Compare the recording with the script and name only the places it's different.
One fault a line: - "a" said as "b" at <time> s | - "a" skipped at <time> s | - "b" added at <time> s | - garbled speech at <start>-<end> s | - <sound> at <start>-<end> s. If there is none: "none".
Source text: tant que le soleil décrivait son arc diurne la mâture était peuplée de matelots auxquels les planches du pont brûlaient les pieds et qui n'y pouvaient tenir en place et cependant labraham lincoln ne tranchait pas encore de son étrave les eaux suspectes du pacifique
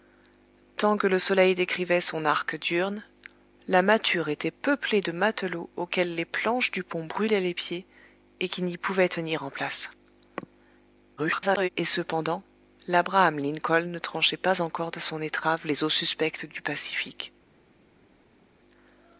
- garbled speech at 11.2-11.7 s